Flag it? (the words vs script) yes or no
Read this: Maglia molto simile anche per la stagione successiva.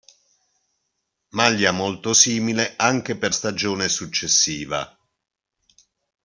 yes